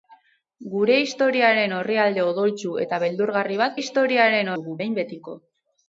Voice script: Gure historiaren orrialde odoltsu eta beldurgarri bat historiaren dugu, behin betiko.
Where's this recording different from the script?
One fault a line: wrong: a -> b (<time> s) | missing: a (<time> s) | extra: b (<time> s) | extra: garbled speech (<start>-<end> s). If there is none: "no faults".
no faults